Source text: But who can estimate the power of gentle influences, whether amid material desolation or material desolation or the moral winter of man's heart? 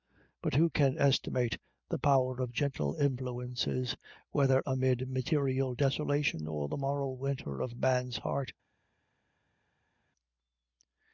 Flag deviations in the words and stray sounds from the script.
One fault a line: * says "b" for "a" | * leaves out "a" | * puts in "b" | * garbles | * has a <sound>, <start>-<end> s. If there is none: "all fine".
* leaves out "material desolation or"